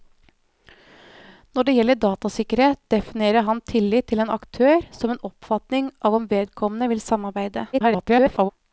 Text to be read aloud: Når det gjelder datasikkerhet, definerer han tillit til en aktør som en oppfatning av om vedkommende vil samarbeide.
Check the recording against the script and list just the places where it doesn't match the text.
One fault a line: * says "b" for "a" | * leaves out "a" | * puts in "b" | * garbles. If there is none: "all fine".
* garbles